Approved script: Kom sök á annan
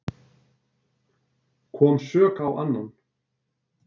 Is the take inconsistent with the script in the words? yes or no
no